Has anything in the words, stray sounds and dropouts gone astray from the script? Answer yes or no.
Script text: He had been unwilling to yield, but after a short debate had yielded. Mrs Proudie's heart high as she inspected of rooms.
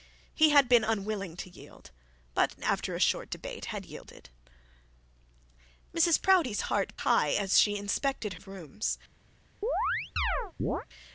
yes